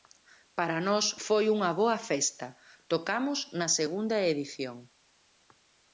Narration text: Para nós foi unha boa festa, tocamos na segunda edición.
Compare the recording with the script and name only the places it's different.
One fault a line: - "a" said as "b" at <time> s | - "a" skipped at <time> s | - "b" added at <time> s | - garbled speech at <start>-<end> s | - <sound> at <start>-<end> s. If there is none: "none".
none